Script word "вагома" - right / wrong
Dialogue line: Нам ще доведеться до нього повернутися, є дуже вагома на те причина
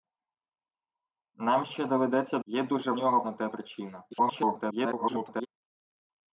wrong